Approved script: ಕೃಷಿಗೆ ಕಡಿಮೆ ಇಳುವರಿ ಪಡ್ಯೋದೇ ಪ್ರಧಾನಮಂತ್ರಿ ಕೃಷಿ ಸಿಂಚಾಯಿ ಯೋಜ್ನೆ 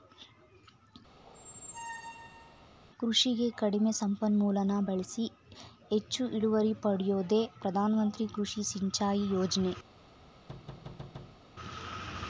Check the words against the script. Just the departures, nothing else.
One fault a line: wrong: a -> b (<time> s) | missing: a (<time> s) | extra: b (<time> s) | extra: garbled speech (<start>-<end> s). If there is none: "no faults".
extra: ಸಂಪನ್ಮೂಲನ ಬಳ್ಸಿ ಹೆಚ್ಚು (4.0 s)